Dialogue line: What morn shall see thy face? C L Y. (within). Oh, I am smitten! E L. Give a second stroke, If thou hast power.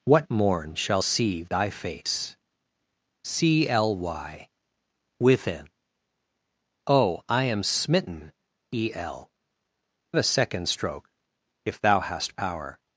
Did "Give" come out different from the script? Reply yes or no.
yes